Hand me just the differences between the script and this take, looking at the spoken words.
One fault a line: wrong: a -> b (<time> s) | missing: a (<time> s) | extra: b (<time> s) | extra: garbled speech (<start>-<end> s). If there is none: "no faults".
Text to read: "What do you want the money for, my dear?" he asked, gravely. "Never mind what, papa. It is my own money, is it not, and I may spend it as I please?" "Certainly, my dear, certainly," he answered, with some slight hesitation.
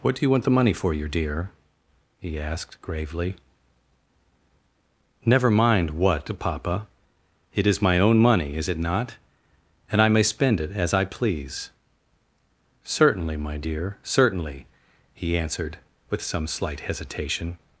wrong: my -> your (0.9 s)